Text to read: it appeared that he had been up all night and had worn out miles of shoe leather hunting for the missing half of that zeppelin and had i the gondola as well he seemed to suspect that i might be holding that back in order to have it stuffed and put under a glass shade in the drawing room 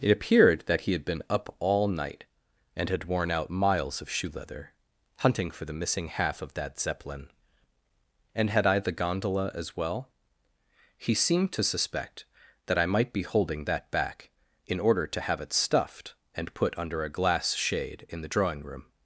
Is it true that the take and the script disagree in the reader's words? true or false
false